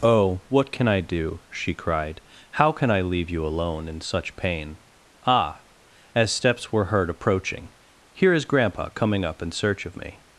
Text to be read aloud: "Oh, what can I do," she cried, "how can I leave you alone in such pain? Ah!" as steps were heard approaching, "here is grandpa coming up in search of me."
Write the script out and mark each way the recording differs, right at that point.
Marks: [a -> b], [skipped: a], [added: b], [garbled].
"Oh, what can I do," she cried, "how can I leave you alone in such pain? Ah!" as steps were heard approaching, "here is grandpa coming up in search of me."